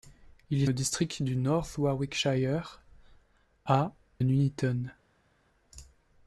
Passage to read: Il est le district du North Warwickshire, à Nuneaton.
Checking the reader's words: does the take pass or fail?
pass